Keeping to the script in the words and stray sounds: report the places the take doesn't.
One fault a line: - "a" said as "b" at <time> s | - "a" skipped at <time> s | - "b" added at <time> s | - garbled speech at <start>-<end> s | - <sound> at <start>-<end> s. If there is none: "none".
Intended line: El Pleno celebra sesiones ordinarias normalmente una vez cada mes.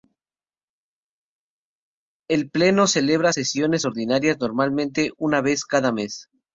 none